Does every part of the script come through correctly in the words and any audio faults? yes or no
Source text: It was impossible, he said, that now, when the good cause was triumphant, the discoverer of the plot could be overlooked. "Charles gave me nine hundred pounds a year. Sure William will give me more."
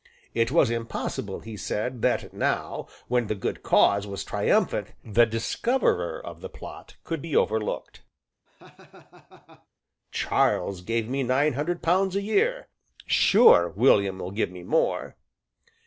no